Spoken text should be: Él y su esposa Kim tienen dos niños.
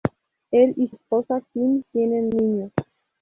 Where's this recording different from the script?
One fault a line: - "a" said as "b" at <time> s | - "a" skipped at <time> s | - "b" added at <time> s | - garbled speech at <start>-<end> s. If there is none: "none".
- "su" skipped at 0.9 s
- "dos" skipped at 2.3 s